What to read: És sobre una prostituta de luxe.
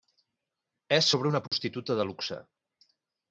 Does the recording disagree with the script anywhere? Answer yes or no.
no